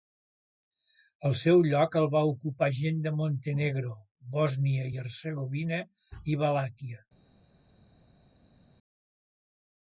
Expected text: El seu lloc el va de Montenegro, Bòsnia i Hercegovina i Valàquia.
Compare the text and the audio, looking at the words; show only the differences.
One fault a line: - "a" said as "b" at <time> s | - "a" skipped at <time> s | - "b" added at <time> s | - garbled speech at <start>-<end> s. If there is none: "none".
- "ocupar gent" added at 2.3 s